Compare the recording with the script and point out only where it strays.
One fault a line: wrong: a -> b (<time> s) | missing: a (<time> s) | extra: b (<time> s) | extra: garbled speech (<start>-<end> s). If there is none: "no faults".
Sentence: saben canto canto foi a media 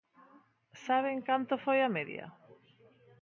missing: canto (1.5 s)